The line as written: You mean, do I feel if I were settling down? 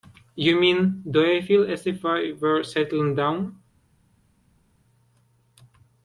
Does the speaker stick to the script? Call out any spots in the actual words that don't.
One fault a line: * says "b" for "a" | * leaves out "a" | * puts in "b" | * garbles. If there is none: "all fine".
* puts in "as"